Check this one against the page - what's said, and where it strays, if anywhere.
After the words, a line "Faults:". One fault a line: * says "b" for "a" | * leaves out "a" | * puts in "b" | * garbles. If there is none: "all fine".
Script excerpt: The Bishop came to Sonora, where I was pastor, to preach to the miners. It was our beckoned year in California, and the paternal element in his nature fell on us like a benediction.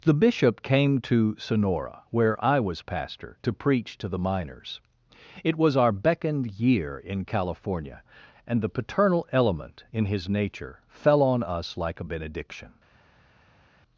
The Bishop came to Sonora, where I was pastor, to preach to the miners. It was our beckoned year in California, and the paternal element in his nature fell on us like a benediction.
Faults:
all fine